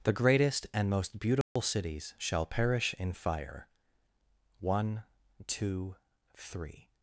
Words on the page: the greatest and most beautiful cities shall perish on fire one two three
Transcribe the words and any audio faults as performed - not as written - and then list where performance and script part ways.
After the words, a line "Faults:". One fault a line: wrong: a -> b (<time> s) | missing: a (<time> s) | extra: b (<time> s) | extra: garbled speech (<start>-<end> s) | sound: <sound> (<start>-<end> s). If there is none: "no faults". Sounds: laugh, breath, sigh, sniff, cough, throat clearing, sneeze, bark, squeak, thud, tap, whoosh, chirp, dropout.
the greatest and most beautiful cities shall perish in fire one two three
Faults:
sound: dropout (1.4-1.6 s)
wrong: on -> in (3.0 s)